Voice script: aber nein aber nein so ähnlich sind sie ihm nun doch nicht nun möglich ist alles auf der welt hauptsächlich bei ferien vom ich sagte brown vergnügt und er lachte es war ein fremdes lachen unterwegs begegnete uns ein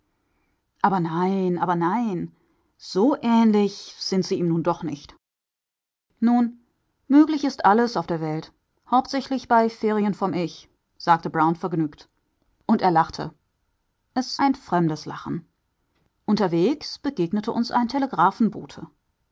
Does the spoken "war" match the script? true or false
false